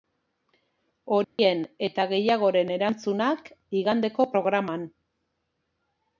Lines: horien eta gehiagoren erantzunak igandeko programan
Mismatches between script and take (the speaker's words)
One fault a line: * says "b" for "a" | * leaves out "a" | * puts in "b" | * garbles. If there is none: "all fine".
all fine